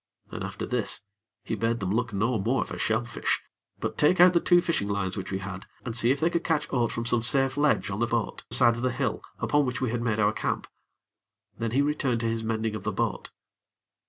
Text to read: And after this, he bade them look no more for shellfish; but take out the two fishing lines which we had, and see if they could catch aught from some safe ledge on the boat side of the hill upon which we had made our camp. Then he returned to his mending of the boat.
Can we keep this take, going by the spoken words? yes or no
yes